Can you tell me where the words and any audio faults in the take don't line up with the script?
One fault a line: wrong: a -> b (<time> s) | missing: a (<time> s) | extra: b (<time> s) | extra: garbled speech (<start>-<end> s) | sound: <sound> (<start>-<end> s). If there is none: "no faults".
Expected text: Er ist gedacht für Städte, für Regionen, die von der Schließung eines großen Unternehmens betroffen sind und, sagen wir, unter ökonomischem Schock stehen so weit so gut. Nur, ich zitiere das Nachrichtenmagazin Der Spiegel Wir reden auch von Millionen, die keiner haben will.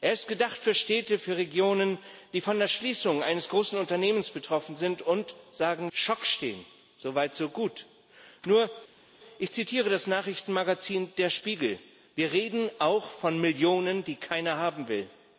missing: wir unter ökonomischem (5.9 s)